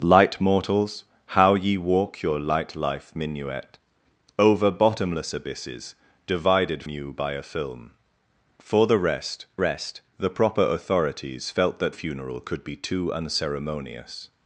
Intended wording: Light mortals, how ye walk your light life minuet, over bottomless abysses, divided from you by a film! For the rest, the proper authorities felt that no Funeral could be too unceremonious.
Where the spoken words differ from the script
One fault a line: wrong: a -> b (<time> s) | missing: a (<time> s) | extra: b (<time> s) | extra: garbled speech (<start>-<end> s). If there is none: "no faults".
missing: from (6.8 s)
extra: rest (9.6 s)
missing: no (11.9 s)